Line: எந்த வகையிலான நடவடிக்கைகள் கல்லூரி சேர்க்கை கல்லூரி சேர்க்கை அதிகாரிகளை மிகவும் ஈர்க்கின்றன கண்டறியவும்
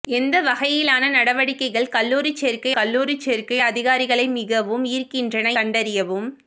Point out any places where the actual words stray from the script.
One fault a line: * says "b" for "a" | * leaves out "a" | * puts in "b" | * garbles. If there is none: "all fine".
all fine